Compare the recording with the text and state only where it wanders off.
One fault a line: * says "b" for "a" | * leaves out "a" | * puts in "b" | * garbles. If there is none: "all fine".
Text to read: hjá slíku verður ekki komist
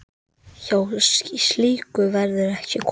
all fine